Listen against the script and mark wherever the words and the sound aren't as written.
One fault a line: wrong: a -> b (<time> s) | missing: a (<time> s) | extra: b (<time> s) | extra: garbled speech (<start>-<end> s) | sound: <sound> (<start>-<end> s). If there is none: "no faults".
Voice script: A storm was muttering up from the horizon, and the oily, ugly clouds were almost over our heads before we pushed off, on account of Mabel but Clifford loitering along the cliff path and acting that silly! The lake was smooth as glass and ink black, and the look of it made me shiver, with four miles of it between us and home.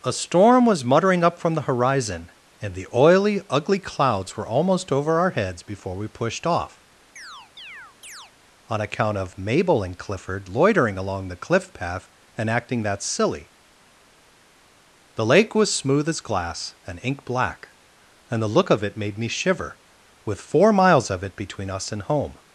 sound: chirp (7.2-8.3 s)
wrong: but -> and (9.8 s)